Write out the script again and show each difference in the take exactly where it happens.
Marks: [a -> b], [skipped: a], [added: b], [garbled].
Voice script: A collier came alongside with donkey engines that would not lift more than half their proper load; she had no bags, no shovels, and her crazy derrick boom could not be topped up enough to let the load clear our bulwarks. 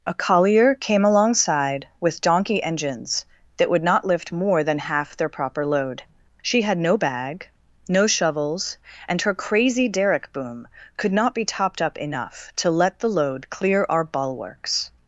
A collier came alongside with donkey engines that would not lift more than half their proper load; she had no [bags, -> bag] no shovels, and her crazy derrick boom could not be topped up enough to let the load clear our bulwarks.